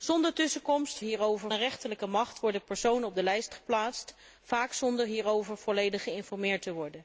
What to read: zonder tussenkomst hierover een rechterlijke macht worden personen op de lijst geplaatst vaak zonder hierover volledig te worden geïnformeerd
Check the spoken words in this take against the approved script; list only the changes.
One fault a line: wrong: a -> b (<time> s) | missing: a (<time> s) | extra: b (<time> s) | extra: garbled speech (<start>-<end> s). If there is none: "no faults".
no faults